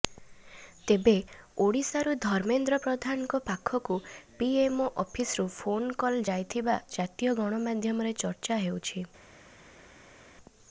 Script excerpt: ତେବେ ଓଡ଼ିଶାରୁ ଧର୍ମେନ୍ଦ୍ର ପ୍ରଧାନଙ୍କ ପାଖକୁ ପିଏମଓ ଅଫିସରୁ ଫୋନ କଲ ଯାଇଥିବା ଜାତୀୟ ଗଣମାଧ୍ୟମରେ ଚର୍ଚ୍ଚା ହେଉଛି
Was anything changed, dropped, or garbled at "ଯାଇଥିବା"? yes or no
no